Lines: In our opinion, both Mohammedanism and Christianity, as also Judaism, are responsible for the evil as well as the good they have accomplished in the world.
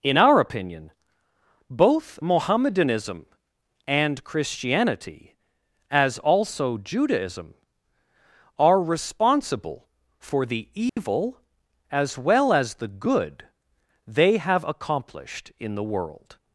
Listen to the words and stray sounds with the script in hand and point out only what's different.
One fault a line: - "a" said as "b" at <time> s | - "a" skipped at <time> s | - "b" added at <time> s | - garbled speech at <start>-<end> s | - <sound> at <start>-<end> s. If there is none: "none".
- dropout at 10.9-11.0 s